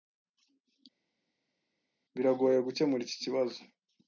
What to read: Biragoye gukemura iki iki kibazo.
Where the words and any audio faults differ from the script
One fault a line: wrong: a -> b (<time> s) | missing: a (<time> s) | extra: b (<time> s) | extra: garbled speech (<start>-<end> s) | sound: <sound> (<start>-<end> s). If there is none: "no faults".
missing: iki (3.2 s)